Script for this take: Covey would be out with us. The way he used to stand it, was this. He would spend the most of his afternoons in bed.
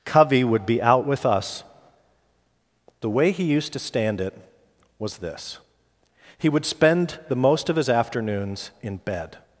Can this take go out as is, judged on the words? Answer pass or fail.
pass